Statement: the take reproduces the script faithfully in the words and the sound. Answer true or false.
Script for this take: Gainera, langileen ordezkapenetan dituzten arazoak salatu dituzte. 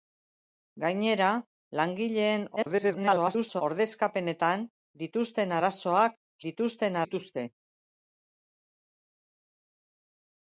false